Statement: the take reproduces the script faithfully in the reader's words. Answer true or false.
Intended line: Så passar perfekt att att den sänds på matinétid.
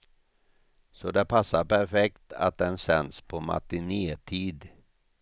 false